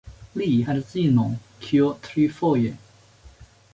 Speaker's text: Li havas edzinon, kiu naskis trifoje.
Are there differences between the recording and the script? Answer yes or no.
yes